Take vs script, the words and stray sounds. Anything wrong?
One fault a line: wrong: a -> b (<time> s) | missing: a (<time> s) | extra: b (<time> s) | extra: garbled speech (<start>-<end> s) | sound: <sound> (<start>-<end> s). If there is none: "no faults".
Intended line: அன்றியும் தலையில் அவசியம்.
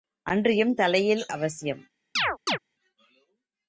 sound: chirp (2.2-2.6 s)